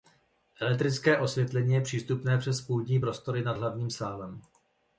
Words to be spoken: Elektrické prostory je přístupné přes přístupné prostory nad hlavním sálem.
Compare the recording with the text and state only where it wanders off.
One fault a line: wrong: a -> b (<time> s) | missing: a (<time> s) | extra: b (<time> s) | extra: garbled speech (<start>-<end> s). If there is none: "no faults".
wrong: prostory -> osvětlení (1.2 s)
wrong: přístupné -> půdní (2.6 s)